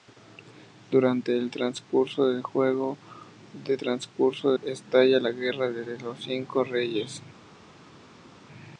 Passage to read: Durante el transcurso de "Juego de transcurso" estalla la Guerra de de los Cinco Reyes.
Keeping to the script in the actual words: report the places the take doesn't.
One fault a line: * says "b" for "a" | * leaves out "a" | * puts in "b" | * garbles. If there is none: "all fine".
all fine